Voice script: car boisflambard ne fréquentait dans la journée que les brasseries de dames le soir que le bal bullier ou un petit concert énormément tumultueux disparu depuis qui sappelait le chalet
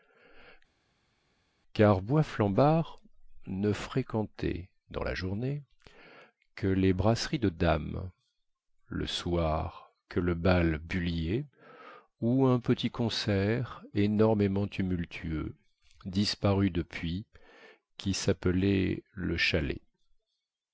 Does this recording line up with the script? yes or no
yes